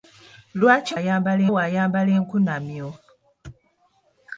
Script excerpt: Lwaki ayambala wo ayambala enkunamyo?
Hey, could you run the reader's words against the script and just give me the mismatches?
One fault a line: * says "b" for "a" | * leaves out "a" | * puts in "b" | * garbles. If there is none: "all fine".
all fine